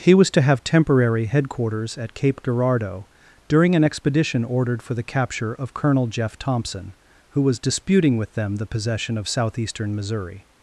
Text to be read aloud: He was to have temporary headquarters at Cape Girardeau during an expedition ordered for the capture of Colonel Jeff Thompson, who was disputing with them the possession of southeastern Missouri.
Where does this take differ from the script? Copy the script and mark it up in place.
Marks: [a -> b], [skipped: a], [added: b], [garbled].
He was to have temporary headquarters at Cape Girardeau during an expedition ordered for the capture of Colonel Jeff Thompson, who was disputing with them the possession of southeastern Missouri.